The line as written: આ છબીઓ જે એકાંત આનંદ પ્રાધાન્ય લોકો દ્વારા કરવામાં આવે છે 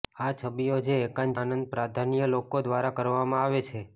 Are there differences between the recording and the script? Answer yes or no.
no